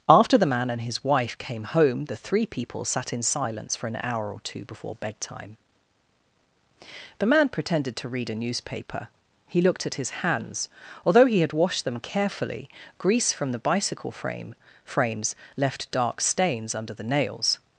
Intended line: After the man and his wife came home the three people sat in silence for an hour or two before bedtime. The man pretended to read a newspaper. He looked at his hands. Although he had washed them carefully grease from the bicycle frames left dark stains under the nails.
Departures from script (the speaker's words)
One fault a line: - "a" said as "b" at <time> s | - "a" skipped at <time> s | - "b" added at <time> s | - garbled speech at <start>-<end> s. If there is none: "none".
- "frame" added at 14.1 s